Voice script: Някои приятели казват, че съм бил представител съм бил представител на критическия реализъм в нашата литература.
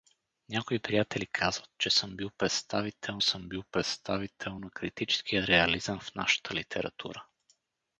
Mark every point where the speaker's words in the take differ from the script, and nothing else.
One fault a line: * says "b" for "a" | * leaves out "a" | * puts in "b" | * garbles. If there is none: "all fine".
all fine